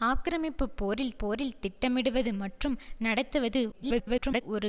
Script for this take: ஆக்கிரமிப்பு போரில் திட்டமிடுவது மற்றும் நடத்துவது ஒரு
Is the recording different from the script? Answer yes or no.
yes